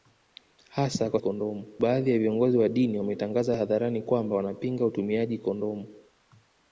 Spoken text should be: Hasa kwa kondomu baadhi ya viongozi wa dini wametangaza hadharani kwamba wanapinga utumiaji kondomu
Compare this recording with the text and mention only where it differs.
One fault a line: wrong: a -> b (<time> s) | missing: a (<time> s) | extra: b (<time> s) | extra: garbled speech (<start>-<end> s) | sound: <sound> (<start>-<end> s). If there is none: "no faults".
no faults